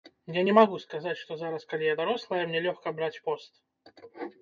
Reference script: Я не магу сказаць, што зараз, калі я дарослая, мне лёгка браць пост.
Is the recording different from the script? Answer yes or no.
no